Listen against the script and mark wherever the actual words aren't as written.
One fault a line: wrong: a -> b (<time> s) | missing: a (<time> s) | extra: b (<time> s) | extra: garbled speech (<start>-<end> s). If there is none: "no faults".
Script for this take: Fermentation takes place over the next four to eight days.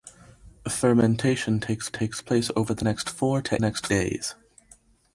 extra: takes (1.9 s)
wrong: eight -> next (3.6 s)